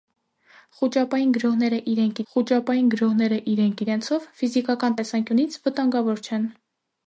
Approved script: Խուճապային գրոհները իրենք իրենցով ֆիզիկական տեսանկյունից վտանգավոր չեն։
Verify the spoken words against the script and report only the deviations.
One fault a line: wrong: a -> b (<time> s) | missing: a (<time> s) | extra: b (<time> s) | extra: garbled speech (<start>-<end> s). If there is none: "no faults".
extra: խուճապային գրոհները իրենք (2.3 s)